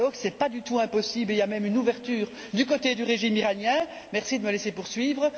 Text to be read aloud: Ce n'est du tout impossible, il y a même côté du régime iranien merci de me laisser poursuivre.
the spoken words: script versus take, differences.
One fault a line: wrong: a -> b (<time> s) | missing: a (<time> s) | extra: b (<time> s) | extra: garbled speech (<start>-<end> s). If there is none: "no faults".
extra: pas (0.3 s)
extra: une ouverture du (1.6 s)